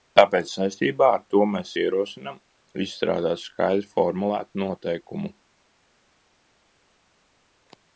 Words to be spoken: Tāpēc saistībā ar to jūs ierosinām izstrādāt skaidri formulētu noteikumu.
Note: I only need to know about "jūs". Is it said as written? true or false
false